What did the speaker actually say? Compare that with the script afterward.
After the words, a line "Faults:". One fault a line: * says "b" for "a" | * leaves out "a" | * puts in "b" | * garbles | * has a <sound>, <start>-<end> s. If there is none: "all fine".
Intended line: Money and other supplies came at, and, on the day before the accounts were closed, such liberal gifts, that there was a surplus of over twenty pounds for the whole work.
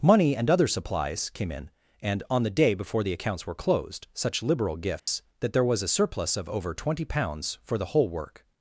Money and other supplies came in, and, on the day before the accounts were closed, such liberal gifts, that there was a surplus of over twenty pounds for the whole work.
Faults:
* says "in" for "at"
* has a dropout, 5.0-5.1 s